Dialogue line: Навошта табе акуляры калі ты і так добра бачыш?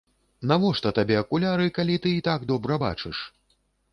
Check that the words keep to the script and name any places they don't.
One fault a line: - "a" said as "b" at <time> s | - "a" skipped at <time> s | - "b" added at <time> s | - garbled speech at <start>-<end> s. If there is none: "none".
none